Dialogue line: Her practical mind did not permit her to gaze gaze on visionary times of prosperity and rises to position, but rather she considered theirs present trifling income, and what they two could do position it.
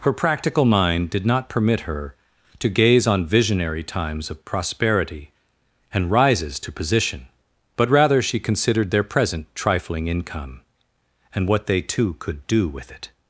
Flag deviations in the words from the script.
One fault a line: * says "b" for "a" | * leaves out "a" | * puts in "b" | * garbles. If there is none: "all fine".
* leaves out "gaze"
* says "their" for "theirs"
* says "with" for "position"